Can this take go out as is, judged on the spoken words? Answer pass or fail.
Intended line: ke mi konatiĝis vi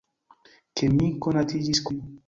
pass